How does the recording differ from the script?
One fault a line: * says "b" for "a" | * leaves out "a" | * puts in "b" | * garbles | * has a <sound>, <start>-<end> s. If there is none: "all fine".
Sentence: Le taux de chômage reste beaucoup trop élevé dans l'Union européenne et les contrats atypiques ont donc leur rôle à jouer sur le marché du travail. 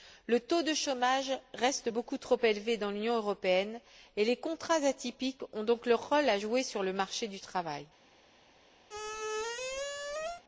* has a squeak, 8.9-10.4 s